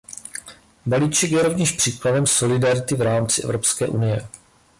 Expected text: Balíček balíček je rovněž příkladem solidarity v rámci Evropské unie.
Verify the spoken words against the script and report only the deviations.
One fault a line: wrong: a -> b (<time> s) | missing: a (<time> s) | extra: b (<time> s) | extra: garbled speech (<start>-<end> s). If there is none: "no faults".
missing: balíček (1.3 s)